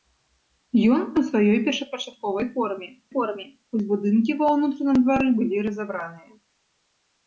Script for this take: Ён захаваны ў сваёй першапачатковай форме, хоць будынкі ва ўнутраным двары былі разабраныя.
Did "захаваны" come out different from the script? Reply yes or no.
yes